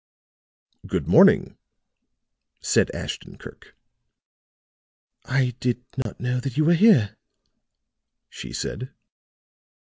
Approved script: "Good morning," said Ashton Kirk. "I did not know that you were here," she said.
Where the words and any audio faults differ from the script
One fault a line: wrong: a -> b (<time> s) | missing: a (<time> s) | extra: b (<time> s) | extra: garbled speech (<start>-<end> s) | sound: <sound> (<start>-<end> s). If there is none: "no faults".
sound: dropout (6.0-6.1 s)